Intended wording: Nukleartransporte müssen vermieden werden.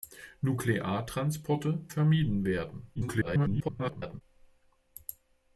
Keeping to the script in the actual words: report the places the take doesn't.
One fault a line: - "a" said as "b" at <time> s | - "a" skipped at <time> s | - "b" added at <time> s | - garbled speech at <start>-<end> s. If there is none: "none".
- "müssen" skipped at 1.9 s
- garbled speech at 3.0-4.2 s